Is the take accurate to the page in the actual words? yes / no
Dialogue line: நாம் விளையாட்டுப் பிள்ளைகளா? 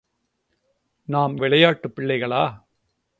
yes